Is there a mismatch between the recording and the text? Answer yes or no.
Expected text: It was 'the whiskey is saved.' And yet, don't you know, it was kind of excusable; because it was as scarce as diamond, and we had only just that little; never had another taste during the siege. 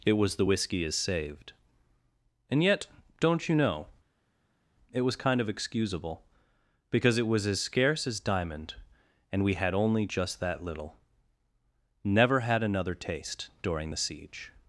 no